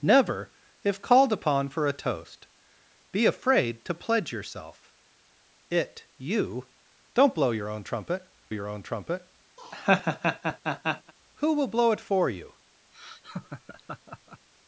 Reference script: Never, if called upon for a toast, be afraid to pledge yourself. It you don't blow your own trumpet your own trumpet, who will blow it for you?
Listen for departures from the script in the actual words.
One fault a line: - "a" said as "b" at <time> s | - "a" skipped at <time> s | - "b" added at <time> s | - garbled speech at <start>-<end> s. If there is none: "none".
none